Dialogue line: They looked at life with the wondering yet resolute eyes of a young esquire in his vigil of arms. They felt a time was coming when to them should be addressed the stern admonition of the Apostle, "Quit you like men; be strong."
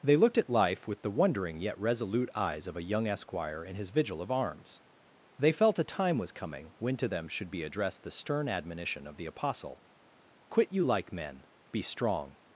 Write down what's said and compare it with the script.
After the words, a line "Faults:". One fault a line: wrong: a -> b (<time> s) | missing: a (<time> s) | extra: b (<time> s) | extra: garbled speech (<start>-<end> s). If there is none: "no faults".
They looked at life with the wondering yet resolute eyes of a young esquire in his vigil of arms. They felt a time was coming when to them should be addressed the stern admonition of the Apostle, "Quit you like men; be strong."
Faults:
no faults